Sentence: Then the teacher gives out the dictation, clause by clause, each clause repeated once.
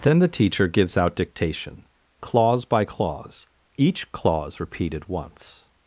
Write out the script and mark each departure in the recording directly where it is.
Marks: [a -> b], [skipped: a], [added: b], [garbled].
Then the teacher gives out [skipped: the] dictation, clause by clause, each clause repeated once.